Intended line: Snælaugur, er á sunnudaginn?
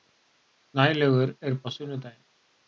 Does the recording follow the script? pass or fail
pass